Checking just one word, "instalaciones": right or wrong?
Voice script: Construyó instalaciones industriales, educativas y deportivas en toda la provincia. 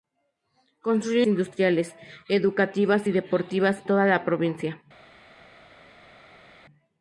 wrong